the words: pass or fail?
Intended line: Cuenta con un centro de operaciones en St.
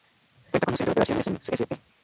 pass